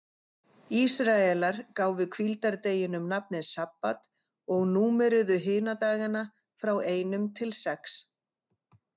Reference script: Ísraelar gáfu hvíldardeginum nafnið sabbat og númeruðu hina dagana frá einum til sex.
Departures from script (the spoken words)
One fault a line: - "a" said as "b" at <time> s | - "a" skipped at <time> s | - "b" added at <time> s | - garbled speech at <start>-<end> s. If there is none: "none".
none